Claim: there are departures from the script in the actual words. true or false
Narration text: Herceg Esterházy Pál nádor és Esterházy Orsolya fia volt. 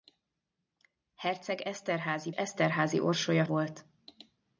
true